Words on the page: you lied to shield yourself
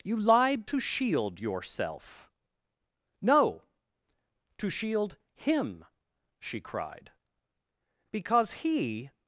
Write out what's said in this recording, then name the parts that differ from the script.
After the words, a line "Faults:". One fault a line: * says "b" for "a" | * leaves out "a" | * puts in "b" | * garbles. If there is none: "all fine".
you lied to shield yourself no to shield him she cried because he
Faults:
* puts in "no to shield him she cried because he"